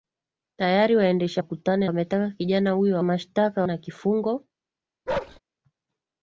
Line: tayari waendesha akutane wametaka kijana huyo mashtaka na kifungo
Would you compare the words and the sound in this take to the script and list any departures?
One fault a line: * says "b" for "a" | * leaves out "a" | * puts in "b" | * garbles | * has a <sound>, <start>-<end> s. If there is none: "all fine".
* has a bark, 5.1-5.4 s